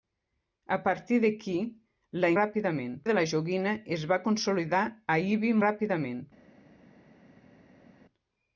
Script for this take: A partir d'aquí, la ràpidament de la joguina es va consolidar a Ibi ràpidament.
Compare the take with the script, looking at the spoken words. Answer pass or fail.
pass